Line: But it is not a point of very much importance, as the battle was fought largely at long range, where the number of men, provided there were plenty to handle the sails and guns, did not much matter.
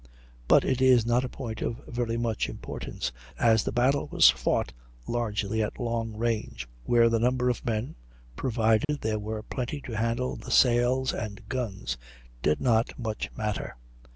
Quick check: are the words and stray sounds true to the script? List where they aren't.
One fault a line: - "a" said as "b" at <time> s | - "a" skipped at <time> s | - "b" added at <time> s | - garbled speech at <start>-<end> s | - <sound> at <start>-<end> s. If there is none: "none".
- dropout at 8.8-8.9 s